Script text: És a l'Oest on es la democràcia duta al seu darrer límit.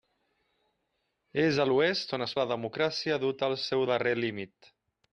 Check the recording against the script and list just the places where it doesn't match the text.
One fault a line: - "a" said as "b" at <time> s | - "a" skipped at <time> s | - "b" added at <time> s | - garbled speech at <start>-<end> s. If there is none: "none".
none